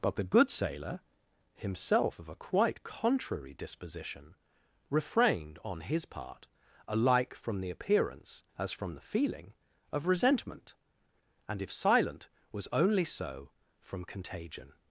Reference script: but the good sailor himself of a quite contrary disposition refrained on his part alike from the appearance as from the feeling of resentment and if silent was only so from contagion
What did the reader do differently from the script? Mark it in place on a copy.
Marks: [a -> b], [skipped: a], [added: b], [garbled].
but the good sailor himself of a quite contrary disposition refrained on his part alike from the appearance as from the feeling of resentment and if silent was only so from contagion